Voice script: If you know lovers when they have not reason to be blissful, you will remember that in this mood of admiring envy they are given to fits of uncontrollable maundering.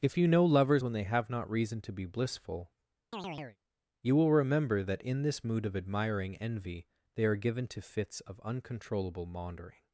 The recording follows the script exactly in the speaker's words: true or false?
true